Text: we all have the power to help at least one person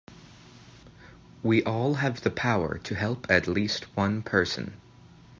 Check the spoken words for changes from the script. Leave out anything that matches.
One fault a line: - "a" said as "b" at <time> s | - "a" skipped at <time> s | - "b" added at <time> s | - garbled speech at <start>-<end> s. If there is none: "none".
none